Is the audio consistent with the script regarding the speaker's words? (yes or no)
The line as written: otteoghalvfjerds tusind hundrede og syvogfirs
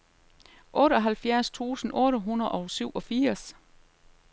no